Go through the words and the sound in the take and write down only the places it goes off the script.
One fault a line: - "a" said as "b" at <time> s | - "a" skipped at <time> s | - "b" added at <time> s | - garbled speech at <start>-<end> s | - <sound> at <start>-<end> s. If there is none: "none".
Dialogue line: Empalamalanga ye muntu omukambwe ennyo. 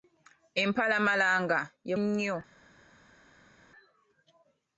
- "muntu omukambwe" skipped at 1.9 s